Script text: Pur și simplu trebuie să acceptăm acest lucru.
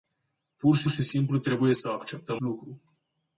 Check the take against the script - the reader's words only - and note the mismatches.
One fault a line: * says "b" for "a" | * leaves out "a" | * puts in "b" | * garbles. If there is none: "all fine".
* puts in "și"
* leaves out "acest"